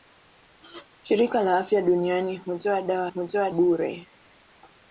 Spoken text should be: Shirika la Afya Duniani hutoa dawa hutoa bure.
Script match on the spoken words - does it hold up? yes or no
yes